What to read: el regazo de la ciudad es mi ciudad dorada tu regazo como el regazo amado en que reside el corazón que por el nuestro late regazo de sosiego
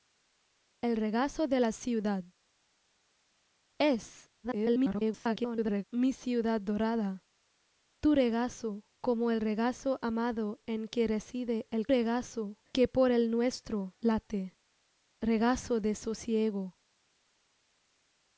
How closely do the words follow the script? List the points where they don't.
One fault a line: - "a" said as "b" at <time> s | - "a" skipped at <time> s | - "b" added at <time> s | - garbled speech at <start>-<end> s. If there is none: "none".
- garbled speech at 4.4-5.8 s
- "corazón" said as "regazo" at 11.9 s